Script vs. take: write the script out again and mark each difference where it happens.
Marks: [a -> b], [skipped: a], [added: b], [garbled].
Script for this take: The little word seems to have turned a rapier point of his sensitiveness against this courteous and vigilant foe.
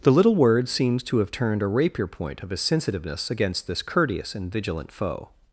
The little word seems to have turned a rapier point of his sensitiveness against this courteous and vigilant foe.